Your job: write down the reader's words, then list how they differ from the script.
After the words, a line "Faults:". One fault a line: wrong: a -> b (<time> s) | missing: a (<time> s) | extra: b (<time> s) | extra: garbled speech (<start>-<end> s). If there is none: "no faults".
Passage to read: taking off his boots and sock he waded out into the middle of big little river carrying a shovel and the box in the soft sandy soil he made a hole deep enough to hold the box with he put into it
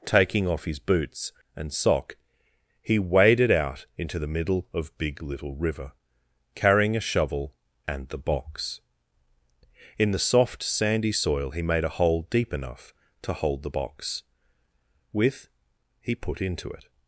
taking off his boots and sock he waded out into the middle of big little river carrying a shovel and the box in the soft sandy soil he made a hole deep enough to hold the box with he put into it
Faults:
no faults